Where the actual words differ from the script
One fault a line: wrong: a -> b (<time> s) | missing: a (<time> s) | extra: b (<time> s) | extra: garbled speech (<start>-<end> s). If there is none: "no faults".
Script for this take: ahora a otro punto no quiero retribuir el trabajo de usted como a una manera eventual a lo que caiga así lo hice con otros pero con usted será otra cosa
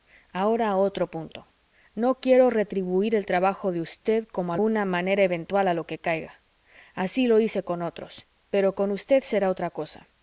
no faults